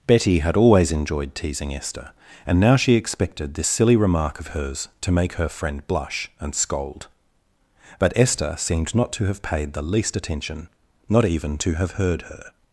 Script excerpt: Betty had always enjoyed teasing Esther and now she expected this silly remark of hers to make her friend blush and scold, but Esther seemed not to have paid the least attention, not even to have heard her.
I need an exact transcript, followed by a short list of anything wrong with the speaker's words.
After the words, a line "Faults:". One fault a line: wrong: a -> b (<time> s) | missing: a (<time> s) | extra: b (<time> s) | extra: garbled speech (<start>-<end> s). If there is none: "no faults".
Betty had always enjoyed teasing Esther and now she expected this silly remark of hers to make her friend blush and scold, but Esther seemed not to have paid the least attention, not even to have heard her.
Faults:
no faults